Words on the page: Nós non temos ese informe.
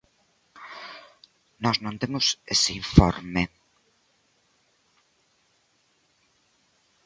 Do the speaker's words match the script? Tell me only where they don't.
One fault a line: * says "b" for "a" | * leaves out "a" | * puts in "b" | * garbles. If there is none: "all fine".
all fine